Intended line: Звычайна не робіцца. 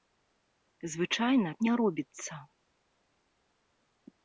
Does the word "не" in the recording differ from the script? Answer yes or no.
no